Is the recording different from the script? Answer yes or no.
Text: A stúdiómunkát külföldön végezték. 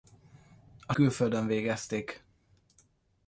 yes